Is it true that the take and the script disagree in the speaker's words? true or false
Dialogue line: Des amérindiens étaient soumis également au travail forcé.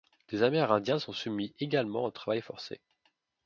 true